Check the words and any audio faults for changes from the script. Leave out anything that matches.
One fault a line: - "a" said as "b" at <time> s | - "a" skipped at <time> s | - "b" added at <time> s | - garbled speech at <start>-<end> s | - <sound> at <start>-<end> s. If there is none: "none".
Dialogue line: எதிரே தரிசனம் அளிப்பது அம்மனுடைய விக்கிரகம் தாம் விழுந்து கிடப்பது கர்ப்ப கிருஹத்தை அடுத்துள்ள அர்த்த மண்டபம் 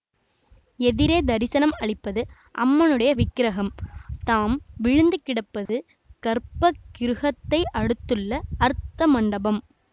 - dropout at 5.7-5.7 s